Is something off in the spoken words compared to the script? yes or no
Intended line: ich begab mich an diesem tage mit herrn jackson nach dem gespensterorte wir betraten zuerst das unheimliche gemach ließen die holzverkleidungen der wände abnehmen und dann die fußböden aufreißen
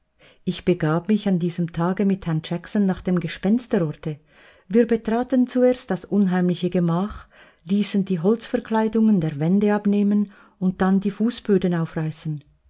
no